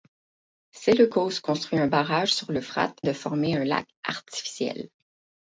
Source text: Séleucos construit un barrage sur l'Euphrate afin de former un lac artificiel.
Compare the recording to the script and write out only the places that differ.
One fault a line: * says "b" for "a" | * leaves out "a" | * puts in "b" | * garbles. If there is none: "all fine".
* leaves out "afin"